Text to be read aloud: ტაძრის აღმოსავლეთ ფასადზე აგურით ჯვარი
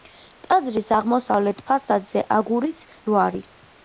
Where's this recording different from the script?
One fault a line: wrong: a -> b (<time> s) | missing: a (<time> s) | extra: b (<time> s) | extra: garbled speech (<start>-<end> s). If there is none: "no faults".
no faults